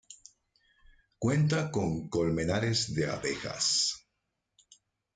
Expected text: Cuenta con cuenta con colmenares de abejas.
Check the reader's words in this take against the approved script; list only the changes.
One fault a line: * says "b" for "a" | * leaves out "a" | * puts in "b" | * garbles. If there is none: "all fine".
* leaves out "cuenta con"